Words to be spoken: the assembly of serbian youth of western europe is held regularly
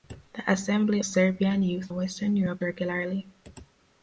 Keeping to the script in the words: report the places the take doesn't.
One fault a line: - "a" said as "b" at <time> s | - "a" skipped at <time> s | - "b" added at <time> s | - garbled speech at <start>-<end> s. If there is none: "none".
- "of" skipped at 1.0 s
- "of" skipped at 1.9 s
- "is held" skipped at 2.6 s